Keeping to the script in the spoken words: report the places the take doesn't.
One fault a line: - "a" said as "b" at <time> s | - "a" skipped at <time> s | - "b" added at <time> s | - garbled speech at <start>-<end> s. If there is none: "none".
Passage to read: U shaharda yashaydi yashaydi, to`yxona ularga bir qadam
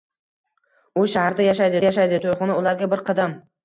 none